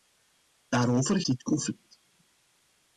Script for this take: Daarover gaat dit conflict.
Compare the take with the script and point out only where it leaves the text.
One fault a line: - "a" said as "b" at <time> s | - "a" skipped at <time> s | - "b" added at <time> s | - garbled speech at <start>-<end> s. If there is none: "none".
- "gaat" skipped at 1.2 s